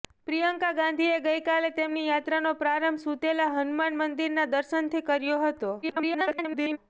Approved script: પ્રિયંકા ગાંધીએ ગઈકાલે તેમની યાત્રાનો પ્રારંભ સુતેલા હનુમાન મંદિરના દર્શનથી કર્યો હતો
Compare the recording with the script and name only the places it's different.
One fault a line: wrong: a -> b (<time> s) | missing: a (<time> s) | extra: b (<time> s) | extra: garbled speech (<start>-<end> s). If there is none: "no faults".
extra: garbled speech (5.8-6.8 s)